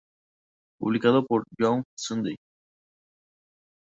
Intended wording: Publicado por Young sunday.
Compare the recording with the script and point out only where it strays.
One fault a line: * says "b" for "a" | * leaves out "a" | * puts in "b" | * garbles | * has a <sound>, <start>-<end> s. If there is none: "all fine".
all fine